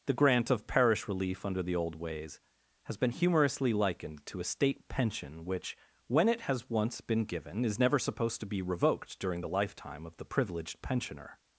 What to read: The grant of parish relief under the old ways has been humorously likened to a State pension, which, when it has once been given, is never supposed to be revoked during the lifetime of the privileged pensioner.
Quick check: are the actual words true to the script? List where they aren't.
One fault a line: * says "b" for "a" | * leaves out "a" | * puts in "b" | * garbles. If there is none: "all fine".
all fine